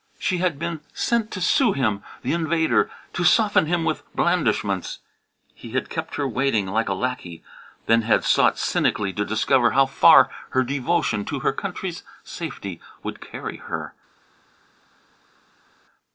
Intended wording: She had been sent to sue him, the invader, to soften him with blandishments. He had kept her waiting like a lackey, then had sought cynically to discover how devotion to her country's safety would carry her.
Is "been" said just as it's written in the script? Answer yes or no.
yes